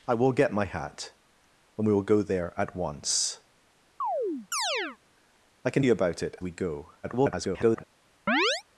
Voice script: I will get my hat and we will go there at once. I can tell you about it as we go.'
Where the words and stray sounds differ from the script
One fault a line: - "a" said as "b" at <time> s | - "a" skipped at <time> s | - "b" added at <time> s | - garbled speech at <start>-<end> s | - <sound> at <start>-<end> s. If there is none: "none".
- chirp at 4.0-5.0 s
- "tell" skipped at 5.8 s
- "as" skipped at 6.4 s
- garbled speech at 7.0-7.8 s
- chirp at 8.3-8.6 s